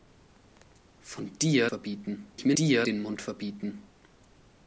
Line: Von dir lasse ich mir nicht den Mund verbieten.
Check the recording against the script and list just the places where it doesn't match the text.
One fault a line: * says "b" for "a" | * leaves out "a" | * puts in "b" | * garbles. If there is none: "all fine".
* says "verbieten" for "lasse"
* says "dir" for "nicht"